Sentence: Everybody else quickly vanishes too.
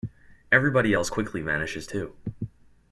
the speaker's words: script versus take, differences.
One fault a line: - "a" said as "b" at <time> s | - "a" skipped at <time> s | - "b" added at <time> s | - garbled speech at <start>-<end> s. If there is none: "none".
none